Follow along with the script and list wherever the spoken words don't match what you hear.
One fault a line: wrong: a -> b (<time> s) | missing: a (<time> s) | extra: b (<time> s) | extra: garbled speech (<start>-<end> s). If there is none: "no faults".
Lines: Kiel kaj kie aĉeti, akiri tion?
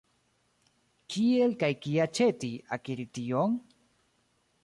no faults